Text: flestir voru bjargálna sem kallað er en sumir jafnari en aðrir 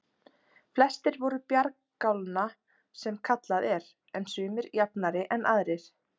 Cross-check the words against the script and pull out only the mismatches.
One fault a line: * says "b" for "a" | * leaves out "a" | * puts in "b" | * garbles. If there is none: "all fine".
all fine